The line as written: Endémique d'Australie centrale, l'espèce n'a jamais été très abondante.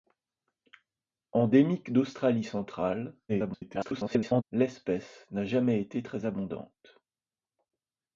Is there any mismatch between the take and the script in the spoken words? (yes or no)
yes